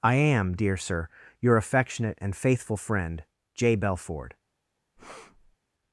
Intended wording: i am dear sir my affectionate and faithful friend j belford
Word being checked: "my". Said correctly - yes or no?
no